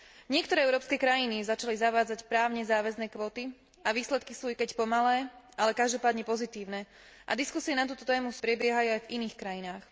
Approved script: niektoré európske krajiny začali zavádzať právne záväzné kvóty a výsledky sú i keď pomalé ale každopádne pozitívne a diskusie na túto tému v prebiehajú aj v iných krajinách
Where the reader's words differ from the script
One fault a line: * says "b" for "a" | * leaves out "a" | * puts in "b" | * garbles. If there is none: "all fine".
all fine